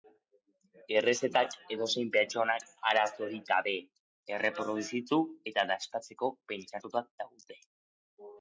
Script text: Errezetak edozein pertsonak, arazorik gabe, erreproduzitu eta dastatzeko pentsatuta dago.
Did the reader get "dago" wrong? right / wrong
wrong